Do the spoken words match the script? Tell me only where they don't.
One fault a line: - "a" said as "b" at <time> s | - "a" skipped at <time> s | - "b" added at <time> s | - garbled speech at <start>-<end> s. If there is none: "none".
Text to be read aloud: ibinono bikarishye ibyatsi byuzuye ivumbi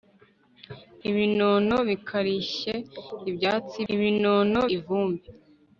- "byuzuye" said as "ibinono" at 3.9 s